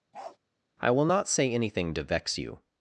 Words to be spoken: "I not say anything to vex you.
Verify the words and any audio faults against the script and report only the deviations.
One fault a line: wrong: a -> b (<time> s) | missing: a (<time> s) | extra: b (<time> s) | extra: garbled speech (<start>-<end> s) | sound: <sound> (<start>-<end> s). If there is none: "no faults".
sound: bark (0.1-0.4 s)
extra: will (0.9 s)